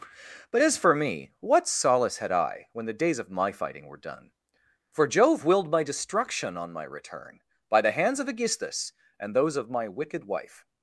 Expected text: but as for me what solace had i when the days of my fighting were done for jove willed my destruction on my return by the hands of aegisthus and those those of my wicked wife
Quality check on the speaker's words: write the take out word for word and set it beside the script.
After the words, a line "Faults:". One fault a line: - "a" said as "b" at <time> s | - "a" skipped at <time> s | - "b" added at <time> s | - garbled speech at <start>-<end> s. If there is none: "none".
but as for me what solace had i when the days of my fighting were done for jove willed my destruction on my return by the hands of aegisthus and those of my wicked wife
Faults:
- "those" skipped at 9.6 s